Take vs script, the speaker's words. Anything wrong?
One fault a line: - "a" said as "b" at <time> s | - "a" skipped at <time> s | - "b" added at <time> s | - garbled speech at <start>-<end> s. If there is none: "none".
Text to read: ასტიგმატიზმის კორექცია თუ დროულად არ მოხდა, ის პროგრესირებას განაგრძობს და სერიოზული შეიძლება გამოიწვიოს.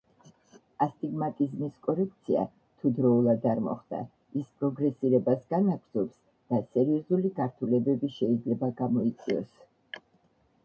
- "გართულებები" added at 7.4 s